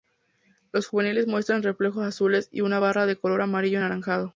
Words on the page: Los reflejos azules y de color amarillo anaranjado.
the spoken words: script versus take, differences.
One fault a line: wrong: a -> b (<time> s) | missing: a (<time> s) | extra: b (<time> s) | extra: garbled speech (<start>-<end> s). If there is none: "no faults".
extra: juveniles muestran (0.9 s)
extra: una barra (2.6 s)